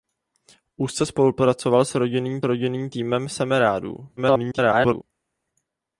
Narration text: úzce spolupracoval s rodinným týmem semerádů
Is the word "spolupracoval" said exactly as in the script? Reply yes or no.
yes